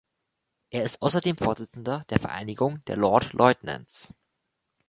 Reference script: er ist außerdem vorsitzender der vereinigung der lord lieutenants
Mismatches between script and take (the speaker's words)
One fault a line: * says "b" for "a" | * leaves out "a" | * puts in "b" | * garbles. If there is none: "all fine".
all fine